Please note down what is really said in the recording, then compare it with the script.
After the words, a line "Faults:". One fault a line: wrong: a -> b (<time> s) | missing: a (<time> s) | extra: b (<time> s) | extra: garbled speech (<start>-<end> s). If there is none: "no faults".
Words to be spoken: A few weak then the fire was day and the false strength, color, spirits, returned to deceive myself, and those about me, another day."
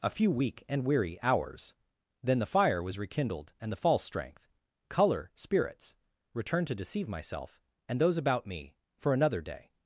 A few weak and weary hours, then the fire was rekindled and the false strength, color, spirits, returned to deceive myself, and those about me, for another day."
Faults:
extra: and weary hours (0.7 s)
wrong: day -> rekindled (3.0 s)
extra: for (9.0 s)